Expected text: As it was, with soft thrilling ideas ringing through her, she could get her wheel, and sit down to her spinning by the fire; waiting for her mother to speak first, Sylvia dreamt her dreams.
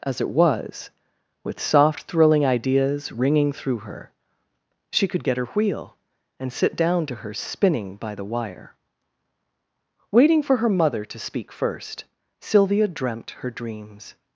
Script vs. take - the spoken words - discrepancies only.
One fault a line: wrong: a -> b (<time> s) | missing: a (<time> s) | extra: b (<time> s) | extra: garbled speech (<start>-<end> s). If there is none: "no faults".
wrong: fire -> wire (8.2 s)